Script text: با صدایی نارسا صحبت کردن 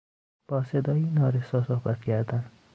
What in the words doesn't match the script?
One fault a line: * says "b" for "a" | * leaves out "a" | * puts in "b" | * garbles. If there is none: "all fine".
all fine